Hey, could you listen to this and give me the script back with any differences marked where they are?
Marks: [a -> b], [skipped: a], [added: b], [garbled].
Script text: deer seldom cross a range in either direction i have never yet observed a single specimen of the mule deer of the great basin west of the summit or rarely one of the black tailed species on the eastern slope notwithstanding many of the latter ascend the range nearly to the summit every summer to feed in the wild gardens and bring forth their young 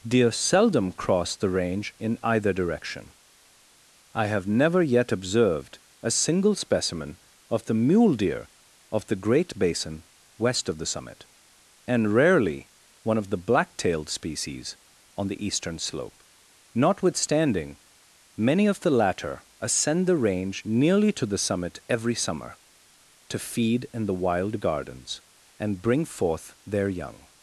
deer seldom cross [a -> the] range in either direction i have never yet observed a single specimen of the mule deer of the great basin west of the summit [or -> and] rarely one of the black tailed species on the eastern slope notwithstanding many of the latter ascend the range nearly to the summit every summer to feed in the wild gardens and bring forth their young